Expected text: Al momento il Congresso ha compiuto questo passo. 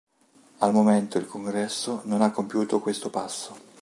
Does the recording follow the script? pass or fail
fail